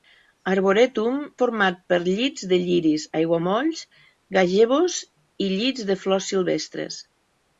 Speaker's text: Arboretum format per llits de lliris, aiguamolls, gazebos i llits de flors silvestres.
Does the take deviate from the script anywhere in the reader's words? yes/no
no